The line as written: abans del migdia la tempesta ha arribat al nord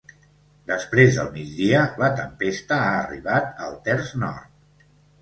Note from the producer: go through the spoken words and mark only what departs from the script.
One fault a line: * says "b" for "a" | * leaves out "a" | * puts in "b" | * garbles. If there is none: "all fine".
* says "després" for "abans"
* puts in "terç"